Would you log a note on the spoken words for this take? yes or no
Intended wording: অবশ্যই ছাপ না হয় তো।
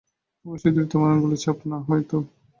yes